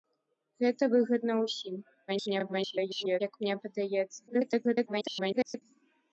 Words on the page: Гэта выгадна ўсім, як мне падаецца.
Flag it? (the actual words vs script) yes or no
yes